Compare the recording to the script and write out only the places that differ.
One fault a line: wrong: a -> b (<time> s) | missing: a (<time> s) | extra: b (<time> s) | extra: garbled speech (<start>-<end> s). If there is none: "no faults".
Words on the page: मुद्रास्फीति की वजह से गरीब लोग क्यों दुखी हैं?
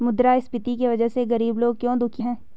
no faults